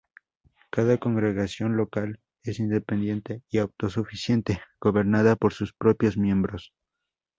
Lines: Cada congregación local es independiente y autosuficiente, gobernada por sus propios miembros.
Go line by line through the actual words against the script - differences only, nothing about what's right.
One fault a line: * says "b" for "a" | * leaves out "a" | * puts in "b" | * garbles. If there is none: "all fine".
all fine